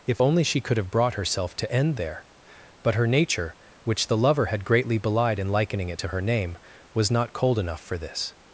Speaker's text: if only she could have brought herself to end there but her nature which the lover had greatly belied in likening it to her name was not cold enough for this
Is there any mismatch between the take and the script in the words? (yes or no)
no